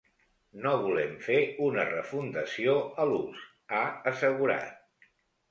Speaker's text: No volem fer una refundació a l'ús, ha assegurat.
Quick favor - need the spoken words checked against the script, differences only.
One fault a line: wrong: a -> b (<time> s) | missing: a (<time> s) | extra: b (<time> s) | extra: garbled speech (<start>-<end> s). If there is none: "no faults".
no faults